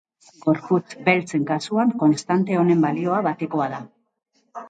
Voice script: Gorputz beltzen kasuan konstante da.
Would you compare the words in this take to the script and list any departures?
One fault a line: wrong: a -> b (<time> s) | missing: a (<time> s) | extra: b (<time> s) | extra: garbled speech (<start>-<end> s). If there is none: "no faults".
extra: honen balioa batekoa (2.6 s)